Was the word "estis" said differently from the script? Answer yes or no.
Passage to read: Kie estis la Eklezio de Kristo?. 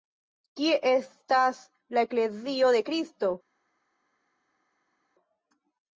yes